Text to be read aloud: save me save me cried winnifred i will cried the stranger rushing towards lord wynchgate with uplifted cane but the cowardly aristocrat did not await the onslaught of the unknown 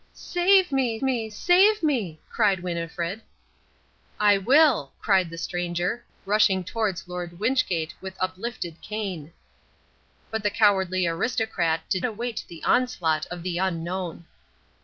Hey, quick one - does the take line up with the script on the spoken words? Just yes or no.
no